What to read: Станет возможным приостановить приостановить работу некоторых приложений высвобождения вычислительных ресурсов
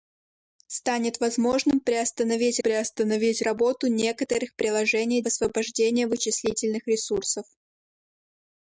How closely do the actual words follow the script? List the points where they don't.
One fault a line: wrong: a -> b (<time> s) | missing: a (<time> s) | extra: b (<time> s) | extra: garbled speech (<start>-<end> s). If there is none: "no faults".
no faults